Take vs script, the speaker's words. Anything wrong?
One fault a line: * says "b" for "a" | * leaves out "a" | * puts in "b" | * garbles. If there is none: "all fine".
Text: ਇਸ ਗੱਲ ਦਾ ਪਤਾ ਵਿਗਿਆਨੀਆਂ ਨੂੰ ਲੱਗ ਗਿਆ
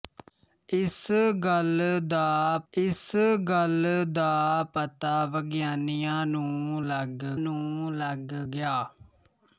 * puts in "ਇਸ ਗੱਲ ਦਾ"
* puts in "ਨੂੰ ਲੱਗ"